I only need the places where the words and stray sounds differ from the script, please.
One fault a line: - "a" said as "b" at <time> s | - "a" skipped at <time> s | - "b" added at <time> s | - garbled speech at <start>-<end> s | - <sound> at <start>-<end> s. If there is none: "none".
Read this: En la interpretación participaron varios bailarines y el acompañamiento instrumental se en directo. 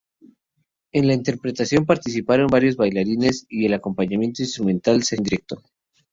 none